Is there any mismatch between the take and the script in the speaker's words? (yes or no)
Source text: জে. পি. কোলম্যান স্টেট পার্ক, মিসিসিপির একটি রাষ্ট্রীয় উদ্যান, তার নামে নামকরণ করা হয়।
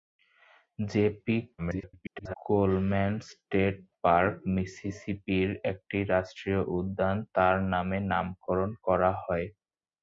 yes